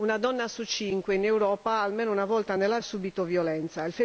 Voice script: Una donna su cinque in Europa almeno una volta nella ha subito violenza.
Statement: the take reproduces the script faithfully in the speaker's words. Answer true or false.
true